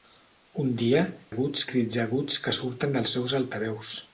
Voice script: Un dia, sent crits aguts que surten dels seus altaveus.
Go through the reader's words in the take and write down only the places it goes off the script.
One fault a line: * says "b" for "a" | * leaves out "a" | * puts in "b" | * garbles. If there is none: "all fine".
* says "aguts" for "sent"